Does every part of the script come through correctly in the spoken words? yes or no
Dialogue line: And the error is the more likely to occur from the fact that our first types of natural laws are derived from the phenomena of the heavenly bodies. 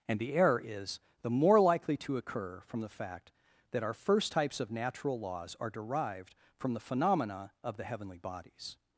yes